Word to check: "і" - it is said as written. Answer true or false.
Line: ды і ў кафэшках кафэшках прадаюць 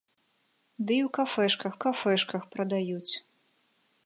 true